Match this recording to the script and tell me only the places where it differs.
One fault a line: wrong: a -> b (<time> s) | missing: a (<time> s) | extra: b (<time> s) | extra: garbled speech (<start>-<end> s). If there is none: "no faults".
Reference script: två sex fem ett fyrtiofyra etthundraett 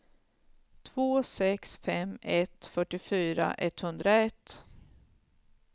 no faults